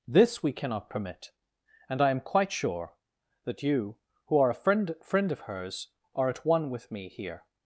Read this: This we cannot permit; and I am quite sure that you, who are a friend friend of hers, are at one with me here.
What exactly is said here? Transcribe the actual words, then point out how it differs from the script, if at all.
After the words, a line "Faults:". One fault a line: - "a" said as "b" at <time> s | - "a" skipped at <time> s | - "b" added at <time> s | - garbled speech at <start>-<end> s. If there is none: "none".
This we cannot permit; and I am quite sure that you, who are a friend friend of hers, are at one with me here.
Faults:
none